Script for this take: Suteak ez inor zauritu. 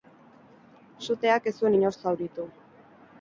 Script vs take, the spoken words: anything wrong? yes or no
yes